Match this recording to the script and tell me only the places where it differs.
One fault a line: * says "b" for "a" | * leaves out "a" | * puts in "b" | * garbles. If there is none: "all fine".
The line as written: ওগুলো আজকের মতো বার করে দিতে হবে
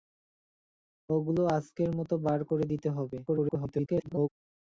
* garbles